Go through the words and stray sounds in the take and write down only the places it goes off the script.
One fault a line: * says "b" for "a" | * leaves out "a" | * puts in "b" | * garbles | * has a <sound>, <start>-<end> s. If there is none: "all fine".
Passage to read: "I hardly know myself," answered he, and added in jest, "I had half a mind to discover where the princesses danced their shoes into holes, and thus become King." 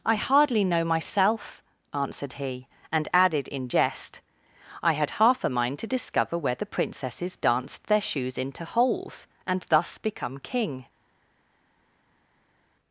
all fine